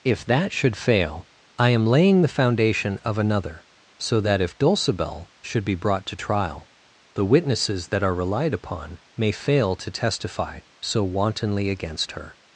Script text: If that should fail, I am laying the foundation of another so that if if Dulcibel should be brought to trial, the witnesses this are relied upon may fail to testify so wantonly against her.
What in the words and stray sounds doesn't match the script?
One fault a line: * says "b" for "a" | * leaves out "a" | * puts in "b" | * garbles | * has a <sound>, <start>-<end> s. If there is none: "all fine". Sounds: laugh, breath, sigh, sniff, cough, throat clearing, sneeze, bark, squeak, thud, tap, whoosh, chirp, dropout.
* leaves out "if"
* says "that" for "this"